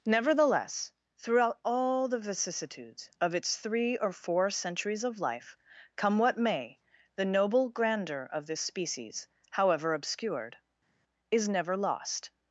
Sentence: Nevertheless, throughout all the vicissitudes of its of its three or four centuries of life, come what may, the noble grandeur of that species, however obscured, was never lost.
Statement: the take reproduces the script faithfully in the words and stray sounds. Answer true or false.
false